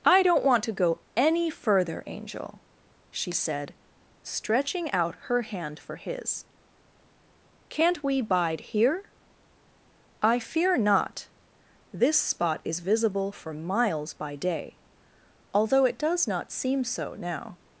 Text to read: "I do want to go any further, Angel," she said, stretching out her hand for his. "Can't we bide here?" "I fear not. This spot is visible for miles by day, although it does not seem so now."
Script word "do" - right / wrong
wrong